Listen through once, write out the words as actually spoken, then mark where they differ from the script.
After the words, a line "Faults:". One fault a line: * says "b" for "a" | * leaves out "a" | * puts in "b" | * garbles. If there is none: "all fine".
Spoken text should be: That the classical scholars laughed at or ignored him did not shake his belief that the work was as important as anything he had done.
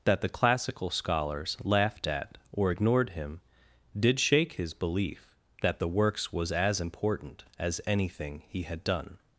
That the classical scholars laughed at or ignored him did shake his belief that the works was as important as anything he had done.
Faults:
* leaves out "not"
* says "works" for "work"